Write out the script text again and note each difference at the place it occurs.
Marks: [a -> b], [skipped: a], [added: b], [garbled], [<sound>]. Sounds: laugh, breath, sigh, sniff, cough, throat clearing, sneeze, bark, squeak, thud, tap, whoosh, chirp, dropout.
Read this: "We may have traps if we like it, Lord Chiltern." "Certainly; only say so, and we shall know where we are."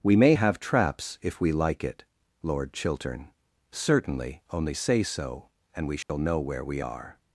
"We may have traps if we like it, Lord Chiltern." "Certainly; only say so, and we shall [dropout] know where we are."